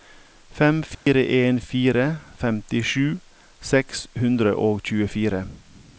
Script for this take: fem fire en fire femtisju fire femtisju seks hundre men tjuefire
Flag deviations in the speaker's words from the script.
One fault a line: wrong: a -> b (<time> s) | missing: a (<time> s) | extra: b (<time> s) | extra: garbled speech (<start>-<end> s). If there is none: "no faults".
missing: fire femtisju (3.2 s)
wrong: men -> og (4.5 s)